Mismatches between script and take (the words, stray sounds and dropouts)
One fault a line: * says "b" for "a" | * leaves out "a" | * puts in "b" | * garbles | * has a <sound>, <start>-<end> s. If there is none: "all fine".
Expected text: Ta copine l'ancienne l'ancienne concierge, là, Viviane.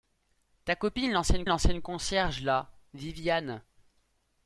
all fine